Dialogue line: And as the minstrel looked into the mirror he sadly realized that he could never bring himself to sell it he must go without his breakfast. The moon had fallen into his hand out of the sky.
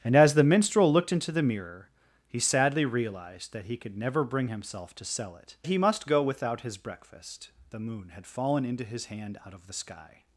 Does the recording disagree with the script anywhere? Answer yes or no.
no